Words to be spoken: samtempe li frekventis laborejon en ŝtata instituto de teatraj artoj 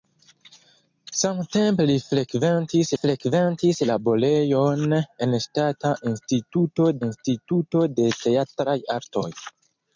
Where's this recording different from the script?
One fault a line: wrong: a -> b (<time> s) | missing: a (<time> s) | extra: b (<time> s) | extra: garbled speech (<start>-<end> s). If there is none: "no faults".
extra: frekventis (3.0 s)
extra: instituto (7.1 s)